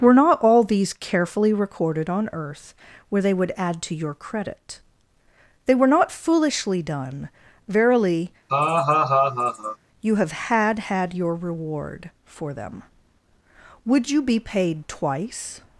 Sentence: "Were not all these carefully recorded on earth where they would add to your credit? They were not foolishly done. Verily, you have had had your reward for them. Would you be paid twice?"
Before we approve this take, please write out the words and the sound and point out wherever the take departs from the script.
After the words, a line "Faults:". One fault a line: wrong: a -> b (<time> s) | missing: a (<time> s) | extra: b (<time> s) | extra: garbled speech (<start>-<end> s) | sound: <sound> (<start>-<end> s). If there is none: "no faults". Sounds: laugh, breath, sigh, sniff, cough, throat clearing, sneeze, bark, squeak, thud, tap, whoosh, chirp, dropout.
"Were not all these carefully recorded on earth where they would add to your credit? They were not foolishly done. Verily, you have had had your reward for them. Would you be paid twice?"
Faults:
sound: laugh (8.5-9.8 s)